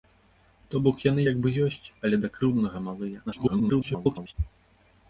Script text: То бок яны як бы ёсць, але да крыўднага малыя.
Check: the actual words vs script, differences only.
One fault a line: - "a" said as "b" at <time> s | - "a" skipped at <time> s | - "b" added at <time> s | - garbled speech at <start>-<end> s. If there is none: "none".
- garbled speech at 3.3-4.3 s